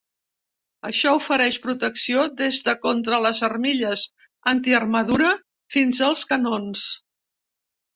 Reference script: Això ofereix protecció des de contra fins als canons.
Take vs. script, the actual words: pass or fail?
fail